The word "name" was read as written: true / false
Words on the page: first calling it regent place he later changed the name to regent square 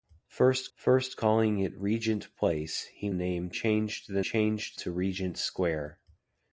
false